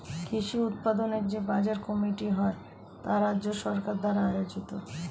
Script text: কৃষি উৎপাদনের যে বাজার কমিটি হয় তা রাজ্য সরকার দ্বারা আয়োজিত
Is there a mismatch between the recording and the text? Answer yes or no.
no